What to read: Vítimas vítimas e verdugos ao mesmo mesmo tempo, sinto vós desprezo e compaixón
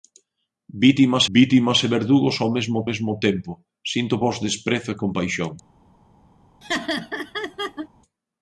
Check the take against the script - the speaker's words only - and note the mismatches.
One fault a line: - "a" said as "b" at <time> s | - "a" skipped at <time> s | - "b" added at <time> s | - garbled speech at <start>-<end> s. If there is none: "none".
none